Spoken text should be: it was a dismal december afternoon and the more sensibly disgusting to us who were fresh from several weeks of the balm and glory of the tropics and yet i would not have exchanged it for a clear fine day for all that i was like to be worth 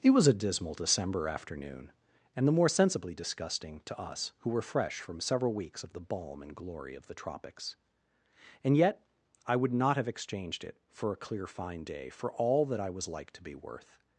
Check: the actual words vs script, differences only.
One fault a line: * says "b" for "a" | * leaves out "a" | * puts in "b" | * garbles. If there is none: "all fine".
all fine